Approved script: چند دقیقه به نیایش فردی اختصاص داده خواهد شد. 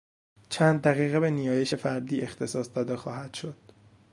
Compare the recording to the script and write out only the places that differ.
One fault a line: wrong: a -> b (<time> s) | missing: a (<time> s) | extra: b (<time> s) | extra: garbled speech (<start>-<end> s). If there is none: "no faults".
no faults